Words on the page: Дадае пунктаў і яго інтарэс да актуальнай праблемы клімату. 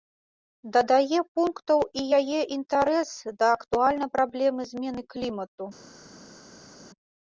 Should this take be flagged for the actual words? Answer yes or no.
yes